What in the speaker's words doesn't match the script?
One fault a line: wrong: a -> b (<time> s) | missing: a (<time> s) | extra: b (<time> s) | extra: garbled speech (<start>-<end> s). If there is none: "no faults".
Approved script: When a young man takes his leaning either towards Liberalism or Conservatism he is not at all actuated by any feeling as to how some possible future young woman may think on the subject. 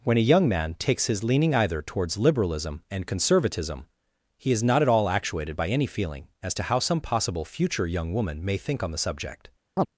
wrong: or -> and (2.9 s)